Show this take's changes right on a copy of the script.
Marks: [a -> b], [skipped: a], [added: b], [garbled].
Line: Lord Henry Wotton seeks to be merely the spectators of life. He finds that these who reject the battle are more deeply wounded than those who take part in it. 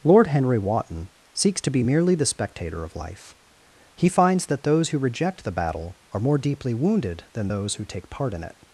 Lord Henry Wotton seeks to be merely the [spectators -> spectator] of life. He finds that [these -> those] who reject the battle are more deeply wounded than those who take part in it.